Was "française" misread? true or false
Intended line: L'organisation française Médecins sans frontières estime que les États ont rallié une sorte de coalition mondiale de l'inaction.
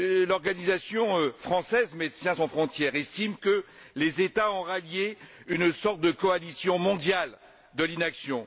false